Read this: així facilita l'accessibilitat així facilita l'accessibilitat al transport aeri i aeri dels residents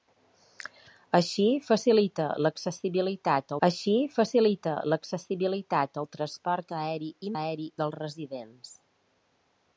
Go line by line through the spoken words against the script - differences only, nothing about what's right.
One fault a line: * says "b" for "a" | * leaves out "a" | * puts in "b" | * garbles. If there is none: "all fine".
all fine